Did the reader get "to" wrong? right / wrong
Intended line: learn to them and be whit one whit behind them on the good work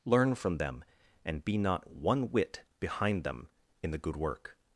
wrong